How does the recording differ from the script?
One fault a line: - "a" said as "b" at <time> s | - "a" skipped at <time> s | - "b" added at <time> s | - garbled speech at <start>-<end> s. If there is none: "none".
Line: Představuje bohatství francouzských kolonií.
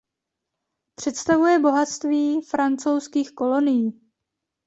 none